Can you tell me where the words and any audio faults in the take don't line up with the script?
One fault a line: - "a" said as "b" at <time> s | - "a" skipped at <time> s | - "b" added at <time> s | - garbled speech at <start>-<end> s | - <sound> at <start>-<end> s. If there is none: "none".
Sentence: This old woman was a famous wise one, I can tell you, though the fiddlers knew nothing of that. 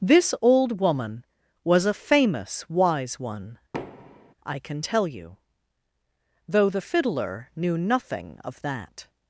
- thud at 3.7-4.3 s
- "fiddlers" said as "fiddler" at 6.8 s